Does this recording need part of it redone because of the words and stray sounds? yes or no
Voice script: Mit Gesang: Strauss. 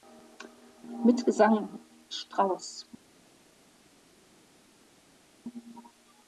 no